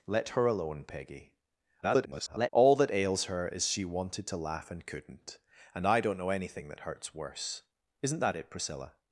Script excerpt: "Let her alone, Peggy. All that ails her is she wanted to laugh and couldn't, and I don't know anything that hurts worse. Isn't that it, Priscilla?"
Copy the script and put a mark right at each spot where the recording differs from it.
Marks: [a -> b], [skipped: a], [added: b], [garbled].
"Let her alone, Peggy. [garbled] All that ails her is she wanted to laugh and couldn't, and I don't know anything that hurts worse. Isn't that it, Priscilla?"